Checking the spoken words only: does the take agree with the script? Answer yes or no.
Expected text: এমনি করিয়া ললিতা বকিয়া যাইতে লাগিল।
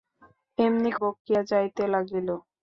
no